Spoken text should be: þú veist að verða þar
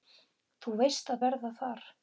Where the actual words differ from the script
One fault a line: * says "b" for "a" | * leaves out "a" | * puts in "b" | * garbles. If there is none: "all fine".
all fine